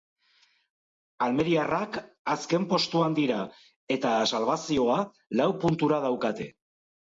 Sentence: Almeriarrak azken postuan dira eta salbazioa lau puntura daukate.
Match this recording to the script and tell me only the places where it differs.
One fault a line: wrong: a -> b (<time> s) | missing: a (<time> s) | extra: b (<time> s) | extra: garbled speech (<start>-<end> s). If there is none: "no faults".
no faults